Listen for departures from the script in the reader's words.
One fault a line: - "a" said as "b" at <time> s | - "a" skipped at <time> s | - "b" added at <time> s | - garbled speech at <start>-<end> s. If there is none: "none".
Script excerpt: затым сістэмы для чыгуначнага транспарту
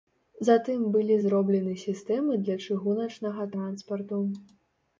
- "былі зроблены" added at 0.9 s